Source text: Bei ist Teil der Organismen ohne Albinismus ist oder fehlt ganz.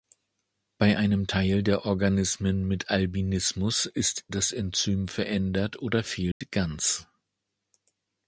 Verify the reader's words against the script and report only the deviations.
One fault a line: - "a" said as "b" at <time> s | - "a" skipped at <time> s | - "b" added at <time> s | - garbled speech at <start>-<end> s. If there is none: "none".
- "ist" said as "einem" at 0.9 s
- "ohne" said as "mit" at 2.7 s
- "das Enzym verändert" added at 4.3 s